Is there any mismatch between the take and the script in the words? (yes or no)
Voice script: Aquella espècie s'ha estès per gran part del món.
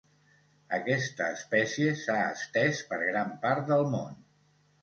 yes